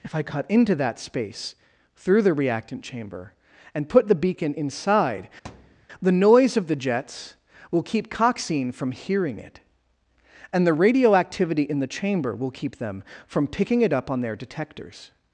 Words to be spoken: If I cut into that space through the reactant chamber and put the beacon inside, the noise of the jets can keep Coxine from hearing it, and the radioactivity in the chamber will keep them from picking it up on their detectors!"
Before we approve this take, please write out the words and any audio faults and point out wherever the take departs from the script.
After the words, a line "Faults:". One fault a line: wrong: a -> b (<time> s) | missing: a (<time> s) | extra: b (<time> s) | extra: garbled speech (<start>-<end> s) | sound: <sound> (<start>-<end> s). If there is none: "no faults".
If I cut into that space through the reactant chamber and put the beacon inside, the noise of the jets will keep Coxine from hearing it, and the radioactivity in the chamber will keep them from picking it up on their detectors!"
Faults:
sound: thud (5.4-5.9 s)
wrong: can -> will (7.7 s)